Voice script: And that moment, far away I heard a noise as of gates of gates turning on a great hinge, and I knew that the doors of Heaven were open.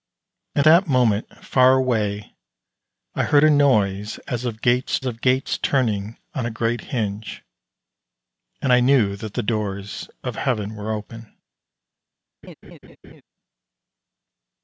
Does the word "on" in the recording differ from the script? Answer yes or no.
no